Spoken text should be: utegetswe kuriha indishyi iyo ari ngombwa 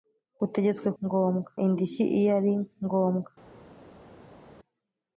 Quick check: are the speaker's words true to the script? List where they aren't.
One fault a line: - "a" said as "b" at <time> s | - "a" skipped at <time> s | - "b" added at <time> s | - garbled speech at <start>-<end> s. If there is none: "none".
- "kuriha" said as "ngombwa" at 1.0 s